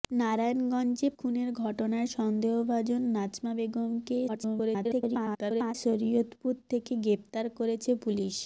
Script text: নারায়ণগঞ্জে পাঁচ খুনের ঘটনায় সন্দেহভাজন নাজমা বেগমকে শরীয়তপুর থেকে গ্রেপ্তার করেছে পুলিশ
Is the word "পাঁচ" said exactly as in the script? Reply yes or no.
no